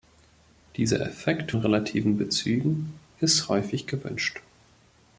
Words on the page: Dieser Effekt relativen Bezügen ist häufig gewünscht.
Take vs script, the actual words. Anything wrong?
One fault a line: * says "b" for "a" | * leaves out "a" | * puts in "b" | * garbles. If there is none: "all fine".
all fine